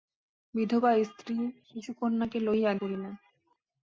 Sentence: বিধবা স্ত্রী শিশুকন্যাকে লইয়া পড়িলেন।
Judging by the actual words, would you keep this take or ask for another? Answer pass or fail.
pass